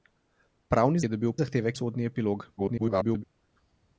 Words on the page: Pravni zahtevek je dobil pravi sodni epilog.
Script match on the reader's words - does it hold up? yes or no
no